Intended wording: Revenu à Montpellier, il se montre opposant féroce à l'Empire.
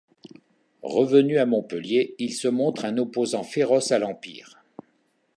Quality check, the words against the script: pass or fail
fail